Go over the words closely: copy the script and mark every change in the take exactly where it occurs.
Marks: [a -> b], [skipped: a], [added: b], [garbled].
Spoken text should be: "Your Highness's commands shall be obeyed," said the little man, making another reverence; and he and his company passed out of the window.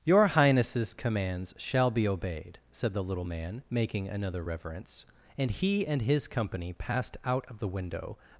"Your Highness's commands shall be obeyed," said the little man, making another reverence; and he and his company passed out of the window.